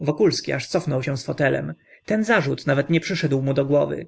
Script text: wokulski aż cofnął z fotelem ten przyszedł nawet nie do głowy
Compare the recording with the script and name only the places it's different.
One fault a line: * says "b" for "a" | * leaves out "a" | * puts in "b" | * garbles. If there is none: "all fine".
* puts in "się"
* says "zarzut" for "przyszedł"
* puts in "przyszedł mu"